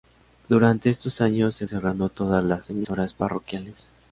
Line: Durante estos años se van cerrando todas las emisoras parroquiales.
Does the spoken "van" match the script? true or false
false